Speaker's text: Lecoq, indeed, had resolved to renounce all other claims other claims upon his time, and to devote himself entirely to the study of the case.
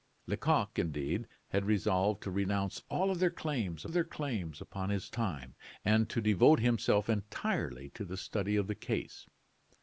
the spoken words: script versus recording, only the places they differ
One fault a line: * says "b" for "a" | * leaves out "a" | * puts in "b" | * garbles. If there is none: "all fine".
all fine